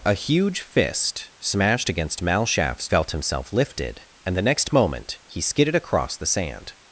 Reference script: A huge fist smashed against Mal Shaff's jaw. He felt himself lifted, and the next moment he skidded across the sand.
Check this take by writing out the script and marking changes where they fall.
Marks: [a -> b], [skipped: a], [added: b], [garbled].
A huge fist smashed against Mal Shaff's [skipped: jaw. He] felt himself lifted, and the next moment he skidded across the sand.